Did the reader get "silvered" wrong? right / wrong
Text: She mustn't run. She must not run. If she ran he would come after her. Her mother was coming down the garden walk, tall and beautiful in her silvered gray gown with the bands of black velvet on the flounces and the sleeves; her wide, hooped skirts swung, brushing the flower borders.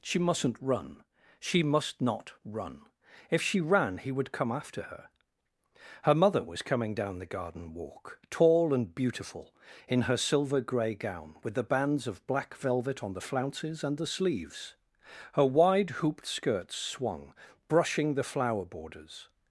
wrong